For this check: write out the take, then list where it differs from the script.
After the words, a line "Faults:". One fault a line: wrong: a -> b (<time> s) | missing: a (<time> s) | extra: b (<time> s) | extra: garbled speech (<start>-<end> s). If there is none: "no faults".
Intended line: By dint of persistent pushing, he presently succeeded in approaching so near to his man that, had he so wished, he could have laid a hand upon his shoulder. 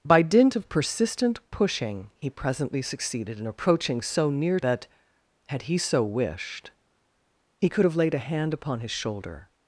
By dint of persistent pushing, he presently succeeded in approaching so near that, had he so wished, he could have laid a hand upon his shoulder.
Faults:
missing: to his man (4.6 s)